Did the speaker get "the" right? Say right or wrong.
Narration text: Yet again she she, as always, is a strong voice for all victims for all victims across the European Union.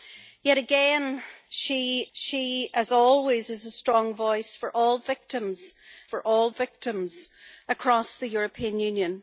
right